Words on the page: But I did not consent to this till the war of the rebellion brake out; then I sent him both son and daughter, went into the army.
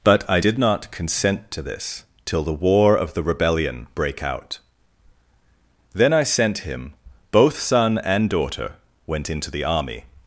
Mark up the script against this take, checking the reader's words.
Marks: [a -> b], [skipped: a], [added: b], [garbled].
But I did not consent to this till the war of the rebellion brake out; then I sent him both son and daughter, went into the army.